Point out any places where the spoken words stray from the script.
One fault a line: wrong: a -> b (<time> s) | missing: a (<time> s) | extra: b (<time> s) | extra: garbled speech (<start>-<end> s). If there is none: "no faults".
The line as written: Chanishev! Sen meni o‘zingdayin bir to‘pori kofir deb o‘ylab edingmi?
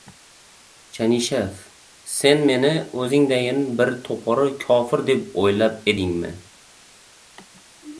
no faults